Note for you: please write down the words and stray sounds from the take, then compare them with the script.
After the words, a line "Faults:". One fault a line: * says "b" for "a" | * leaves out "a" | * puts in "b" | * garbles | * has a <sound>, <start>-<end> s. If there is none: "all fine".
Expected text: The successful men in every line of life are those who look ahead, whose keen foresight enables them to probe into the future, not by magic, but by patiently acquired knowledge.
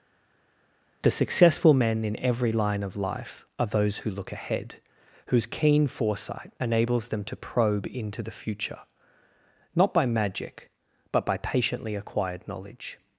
The successful men in every line of life are those who look ahead, whose keen foresight enables them to probe into the future, not by magic, but by patiently acquired knowledge.
Faults:
all fine